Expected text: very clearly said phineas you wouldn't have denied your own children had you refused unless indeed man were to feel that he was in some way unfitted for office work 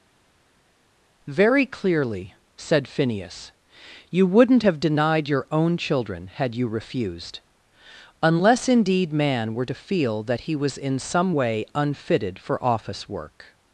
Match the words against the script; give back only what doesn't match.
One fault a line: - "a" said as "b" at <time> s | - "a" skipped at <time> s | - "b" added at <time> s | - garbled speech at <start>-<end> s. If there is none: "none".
none